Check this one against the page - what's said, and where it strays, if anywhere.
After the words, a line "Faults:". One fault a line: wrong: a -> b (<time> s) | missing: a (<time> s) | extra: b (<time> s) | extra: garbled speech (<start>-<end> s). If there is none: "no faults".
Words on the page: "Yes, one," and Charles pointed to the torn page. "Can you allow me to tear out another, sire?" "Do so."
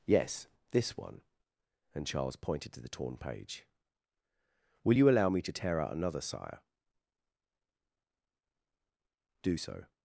"Yes, this one," and Charles pointed to the torn page. "Will you allow me to tear out another, sire?" "Do so."
Faults:
extra: this (0.7 s)
wrong: Can -> Will (4.8 s)